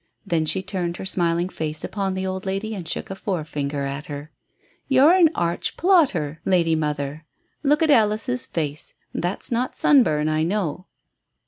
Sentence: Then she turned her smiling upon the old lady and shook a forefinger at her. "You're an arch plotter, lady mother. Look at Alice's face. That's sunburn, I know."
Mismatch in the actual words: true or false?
true